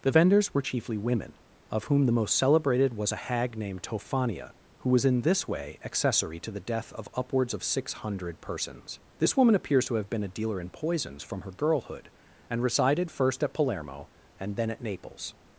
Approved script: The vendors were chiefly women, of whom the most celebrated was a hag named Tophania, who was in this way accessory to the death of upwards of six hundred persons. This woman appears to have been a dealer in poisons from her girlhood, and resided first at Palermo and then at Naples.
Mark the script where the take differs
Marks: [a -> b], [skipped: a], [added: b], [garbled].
The vendors were chiefly women, of whom the most celebrated was a hag named Tophania, who was in this way accessory to the death of upwards of six hundred persons. This woman appears to have been a dealer in poisons from her girlhood, and resided first at Palermo and then at Naples.